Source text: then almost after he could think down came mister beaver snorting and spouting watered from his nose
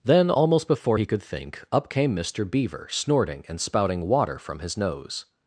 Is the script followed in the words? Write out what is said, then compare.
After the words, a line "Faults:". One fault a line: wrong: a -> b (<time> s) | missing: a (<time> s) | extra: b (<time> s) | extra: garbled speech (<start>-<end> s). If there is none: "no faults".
then almost before he could think up came mister beaver snorting and spouting water from his nose
Faults:
wrong: after -> before (0.7 s)
wrong: down -> up (1.7 s)
wrong: watered -> water (4.1 s)